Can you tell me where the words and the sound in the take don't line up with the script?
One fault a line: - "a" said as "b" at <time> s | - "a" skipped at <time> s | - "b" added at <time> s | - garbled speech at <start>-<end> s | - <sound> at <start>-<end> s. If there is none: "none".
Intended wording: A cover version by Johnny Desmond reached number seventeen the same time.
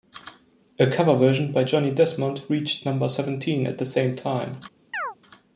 - "at" added at 3.7 s
- chirp at 4.9-5.2 s